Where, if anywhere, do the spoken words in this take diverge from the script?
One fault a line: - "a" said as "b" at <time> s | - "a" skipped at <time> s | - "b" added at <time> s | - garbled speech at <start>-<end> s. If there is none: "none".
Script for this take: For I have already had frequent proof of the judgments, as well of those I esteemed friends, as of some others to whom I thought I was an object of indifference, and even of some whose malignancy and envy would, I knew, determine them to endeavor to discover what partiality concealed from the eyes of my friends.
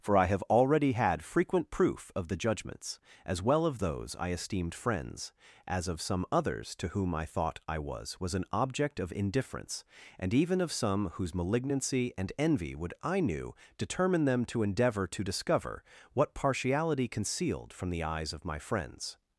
- "was" added at 8.2 s